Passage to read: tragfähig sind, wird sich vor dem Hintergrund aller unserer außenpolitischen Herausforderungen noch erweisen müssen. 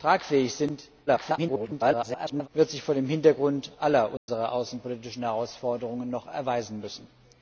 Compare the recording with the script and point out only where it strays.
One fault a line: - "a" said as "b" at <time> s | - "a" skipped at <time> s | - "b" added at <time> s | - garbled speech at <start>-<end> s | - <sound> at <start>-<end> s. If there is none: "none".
- garbled speech at 1.1-2.5 s
- dropout at 4.2-4.3 s